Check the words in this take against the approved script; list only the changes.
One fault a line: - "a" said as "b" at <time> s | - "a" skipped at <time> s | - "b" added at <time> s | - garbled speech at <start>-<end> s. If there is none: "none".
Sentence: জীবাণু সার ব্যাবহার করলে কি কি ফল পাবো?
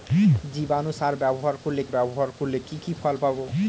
- "ব্যাবহার করলে" added at 1.9 s